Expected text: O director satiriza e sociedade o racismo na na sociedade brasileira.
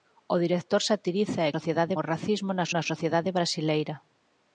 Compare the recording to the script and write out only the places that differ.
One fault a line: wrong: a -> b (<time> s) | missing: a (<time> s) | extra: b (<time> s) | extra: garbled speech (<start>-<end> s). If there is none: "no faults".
no faults